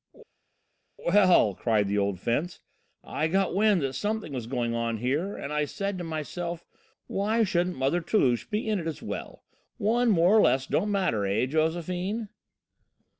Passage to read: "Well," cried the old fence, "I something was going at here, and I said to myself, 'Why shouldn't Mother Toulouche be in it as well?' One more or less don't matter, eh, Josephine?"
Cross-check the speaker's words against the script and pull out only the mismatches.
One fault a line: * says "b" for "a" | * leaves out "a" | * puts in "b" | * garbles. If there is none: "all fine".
* puts in "got wind that"
* says "on" for "at"